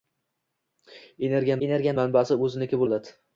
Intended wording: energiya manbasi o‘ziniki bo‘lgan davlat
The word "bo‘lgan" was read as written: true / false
false